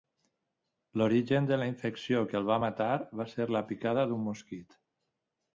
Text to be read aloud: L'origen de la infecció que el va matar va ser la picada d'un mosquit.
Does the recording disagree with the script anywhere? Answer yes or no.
no